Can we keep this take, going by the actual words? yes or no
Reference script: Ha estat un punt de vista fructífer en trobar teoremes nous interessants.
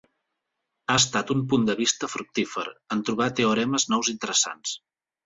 yes